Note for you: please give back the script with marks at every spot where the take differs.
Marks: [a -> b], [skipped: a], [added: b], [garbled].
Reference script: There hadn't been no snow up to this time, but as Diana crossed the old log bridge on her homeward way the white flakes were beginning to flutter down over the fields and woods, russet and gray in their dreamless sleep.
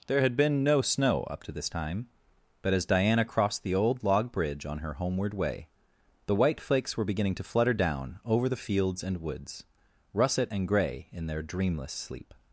There [hadn't -> had] been no snow up to this time, but as Diana crossed the old log bridge on her homeward way the white flakes were beginning to flutter down over the fields and woods, russet and gray in their dreamless sleep.